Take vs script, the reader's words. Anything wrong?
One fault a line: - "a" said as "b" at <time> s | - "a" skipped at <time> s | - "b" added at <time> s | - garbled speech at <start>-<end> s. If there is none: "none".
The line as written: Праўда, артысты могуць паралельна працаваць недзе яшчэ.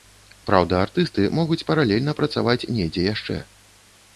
none